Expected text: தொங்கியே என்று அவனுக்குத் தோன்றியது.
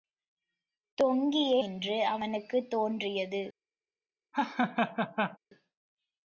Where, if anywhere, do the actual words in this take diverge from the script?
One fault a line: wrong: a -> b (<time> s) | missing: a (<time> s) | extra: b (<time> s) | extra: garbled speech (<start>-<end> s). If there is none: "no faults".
no faults